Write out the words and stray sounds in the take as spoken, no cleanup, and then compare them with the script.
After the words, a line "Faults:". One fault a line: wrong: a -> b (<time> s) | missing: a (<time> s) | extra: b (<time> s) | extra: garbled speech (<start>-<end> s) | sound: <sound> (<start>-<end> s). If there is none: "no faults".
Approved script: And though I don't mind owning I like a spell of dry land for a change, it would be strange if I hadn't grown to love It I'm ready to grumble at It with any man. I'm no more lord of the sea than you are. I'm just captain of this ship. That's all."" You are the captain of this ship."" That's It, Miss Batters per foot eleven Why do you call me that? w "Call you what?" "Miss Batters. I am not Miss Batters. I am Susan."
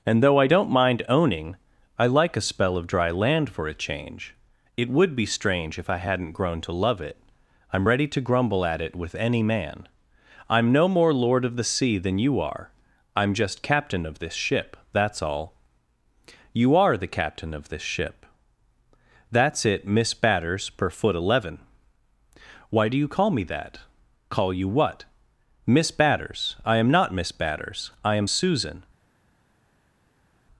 And though I don't mind owning I like a spell of dry land for a change, it would be strange if I hadn't grown to love It I'm ready to grumble at It with any man. I'm no more lord of the sea than you are. I'm just captain of this ship. That's all."" You are the captain of this ship."" That's It, Miss Batters per foot eleven Why do you call me that? "Call you what?" "Miss Batters. I am not Miss Batters. I am Susan."
Faults:
missing: w (23.8 s)